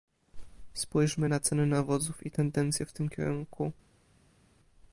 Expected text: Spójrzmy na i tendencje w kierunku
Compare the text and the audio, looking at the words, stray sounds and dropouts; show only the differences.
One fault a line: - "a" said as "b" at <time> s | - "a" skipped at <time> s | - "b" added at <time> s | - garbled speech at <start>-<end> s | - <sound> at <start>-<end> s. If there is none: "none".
- "ceny nawozów" added at 1.4 s
- "tym" added at 2.9 s